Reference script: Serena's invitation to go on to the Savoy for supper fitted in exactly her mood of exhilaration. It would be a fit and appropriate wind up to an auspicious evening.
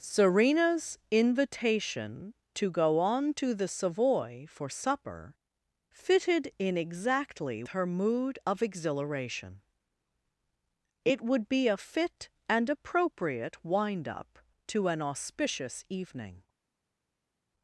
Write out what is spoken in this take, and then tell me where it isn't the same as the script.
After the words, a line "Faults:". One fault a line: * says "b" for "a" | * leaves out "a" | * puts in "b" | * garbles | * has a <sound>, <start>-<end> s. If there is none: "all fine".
Serena's invitation to go on to the Savoy for supper fitted in exactly her mood of exhilaration. It would be a fit and appropriate wind up to an auspicious evening.
Faults:
all fine